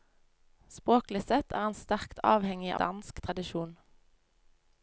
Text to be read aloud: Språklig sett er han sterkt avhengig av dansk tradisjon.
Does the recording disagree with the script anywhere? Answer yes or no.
yes